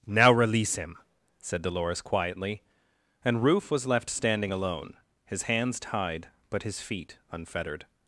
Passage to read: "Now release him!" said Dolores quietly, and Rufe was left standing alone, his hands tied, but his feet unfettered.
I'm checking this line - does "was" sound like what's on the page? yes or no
yes